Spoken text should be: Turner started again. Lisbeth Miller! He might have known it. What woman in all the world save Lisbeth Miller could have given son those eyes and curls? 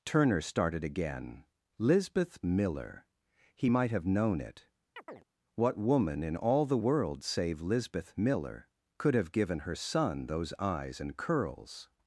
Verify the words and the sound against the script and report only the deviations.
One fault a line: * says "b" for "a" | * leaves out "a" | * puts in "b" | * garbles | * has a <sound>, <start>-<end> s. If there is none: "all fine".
* has a chirp, 5.0-5.2 s
* puts in "her"